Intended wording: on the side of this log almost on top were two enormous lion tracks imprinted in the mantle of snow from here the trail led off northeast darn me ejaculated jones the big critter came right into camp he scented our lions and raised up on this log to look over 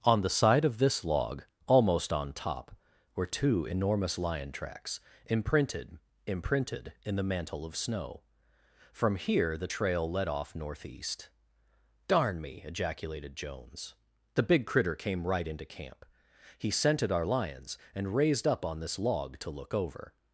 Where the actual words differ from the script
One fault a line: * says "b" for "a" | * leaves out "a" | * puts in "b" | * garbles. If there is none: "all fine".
* puts in "imprinted"